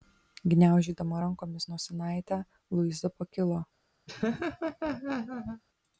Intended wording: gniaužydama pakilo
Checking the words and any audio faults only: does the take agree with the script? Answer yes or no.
no